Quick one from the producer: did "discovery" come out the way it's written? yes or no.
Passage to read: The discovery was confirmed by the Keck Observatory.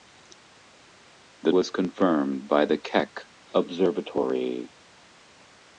no